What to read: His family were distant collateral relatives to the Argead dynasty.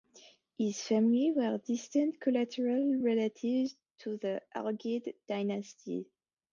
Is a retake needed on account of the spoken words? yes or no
no